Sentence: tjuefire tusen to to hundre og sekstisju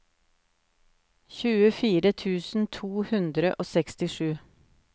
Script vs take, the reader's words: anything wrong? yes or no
yes